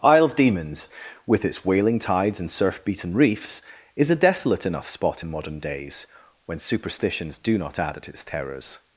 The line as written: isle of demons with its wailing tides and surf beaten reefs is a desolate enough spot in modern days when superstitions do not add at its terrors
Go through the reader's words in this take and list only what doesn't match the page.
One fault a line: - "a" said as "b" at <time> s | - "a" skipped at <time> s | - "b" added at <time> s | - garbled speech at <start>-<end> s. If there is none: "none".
none